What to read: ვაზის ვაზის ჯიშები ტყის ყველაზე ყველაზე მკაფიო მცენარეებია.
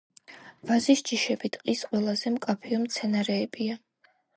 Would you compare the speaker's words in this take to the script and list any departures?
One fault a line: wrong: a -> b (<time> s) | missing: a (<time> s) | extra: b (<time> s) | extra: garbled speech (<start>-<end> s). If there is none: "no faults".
missing: ვაზის (1.0 s)
missing: ყველაზე (2.4 s)